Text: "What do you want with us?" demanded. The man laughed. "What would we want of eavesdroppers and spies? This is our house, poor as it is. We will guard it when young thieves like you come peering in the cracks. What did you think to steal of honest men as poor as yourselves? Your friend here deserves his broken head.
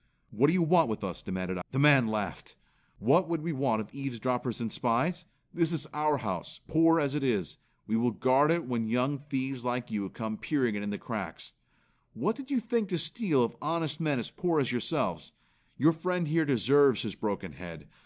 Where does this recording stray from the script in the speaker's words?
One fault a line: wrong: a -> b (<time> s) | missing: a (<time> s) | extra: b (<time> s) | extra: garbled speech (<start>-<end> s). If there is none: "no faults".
no faults